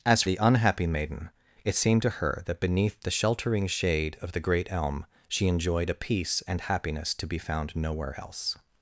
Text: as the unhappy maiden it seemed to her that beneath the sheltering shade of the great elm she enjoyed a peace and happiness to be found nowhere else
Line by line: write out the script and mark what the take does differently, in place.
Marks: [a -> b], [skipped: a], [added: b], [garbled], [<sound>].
as the unhappy maiden it seemed to her that beneath the sheltering shade of the great elm she enjoyed a peace and happiness to be found nowhere else